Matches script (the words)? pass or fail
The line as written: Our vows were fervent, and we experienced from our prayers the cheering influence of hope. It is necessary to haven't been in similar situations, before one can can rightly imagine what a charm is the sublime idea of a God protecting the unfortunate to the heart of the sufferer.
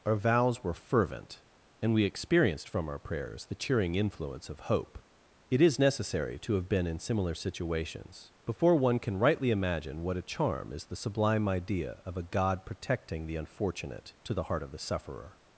fail